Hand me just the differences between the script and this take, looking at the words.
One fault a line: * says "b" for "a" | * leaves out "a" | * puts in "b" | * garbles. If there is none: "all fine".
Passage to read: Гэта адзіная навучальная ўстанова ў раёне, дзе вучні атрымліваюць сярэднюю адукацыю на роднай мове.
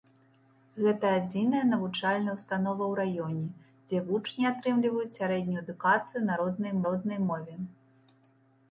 * puts in "роднай"